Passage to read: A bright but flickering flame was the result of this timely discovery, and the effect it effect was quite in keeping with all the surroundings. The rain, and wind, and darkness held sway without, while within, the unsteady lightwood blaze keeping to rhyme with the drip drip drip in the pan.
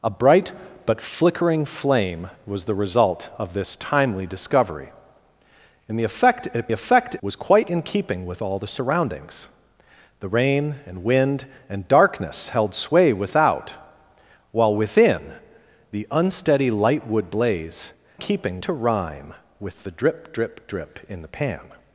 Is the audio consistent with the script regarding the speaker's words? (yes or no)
yes